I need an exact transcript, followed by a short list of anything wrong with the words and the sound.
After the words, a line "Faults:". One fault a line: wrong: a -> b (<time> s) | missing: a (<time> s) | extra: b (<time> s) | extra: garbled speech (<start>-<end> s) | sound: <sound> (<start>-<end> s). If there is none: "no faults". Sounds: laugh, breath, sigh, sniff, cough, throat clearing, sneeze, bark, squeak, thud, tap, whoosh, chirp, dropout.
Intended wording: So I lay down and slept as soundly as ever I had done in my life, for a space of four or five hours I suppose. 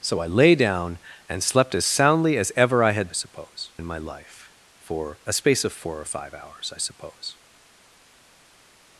So I lay down and slept as soundly as ever I had suppose in my life, for a space of four or five hours I suppose.
Faults:
wrong: done -> suppose (3.1 s)